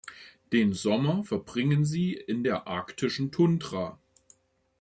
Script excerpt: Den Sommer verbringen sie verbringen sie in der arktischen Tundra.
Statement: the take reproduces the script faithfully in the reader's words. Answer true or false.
false